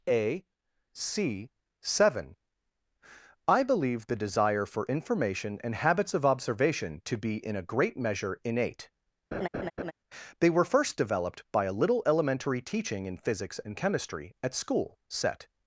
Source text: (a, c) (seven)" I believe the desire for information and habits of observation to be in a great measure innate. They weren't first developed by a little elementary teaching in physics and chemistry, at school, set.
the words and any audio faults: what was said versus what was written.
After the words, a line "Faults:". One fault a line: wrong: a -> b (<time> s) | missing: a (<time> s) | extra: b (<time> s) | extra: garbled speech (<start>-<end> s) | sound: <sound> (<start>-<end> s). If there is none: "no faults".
(a, c) (seven)" I believe the desire for information and habits of observation to be in a great measure innate. They were first developed by a little elementary teaching in physics and chemistry, at school, set.
Faults:
sound: laugh (9.3-9.9 s)
wrong: weren't -> were (10.5 s)